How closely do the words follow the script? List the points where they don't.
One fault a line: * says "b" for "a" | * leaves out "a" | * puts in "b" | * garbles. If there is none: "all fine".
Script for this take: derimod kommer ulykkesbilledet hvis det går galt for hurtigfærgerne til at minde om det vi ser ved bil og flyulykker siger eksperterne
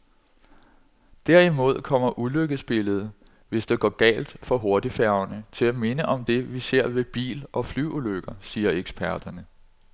all fine